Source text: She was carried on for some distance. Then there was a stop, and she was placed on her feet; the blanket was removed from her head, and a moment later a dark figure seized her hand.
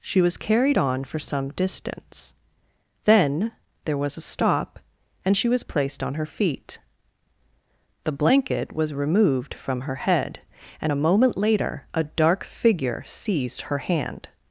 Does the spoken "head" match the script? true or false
true